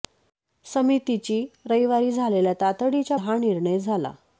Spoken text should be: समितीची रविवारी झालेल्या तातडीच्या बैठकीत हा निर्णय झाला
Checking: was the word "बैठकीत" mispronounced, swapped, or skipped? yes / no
yes